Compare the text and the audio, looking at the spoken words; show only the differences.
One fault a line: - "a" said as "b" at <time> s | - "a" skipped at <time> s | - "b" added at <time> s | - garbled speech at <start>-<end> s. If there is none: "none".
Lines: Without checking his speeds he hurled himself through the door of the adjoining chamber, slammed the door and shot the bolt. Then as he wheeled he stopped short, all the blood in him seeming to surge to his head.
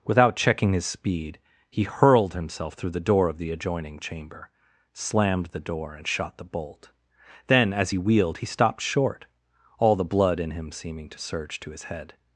- "speeds" said as "speed" at 0.8 s